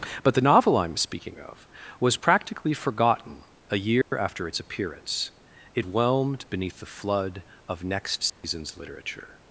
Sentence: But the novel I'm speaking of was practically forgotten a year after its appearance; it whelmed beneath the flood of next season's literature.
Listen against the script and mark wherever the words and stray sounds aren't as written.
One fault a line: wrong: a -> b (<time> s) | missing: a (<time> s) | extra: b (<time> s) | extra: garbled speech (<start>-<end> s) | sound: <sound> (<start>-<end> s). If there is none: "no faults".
sound: dropout (4.0-4.1 s)
sound: dropout (8.3-8.4 s)